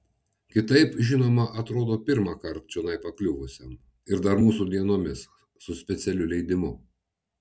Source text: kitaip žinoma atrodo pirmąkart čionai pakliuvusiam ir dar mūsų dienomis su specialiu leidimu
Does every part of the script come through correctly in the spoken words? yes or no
yes